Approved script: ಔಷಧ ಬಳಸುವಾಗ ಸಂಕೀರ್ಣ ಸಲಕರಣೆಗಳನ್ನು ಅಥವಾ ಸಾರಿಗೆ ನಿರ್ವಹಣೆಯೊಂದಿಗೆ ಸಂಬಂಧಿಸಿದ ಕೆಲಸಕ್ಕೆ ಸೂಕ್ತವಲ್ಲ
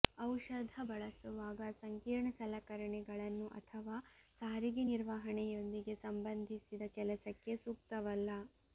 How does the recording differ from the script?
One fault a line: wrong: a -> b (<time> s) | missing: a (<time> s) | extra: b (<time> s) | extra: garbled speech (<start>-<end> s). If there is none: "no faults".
no faults